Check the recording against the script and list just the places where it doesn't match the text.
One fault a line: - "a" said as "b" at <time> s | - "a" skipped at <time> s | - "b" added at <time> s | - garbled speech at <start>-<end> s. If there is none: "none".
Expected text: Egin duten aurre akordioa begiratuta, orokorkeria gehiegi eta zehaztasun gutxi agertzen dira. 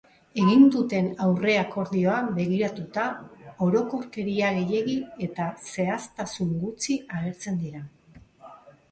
none